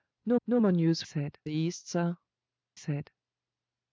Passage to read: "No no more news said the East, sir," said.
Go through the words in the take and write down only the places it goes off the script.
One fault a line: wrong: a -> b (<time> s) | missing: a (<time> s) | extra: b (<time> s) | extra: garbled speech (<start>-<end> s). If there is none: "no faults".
no faults